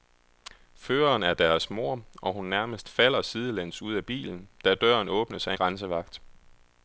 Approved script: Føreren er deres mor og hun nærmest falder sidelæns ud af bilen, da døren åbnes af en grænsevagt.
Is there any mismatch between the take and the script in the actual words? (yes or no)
yes